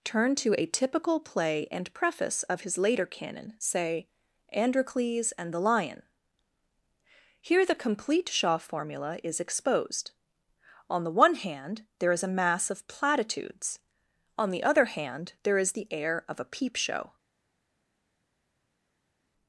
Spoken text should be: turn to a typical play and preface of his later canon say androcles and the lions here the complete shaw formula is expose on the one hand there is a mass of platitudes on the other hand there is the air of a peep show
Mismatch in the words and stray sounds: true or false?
true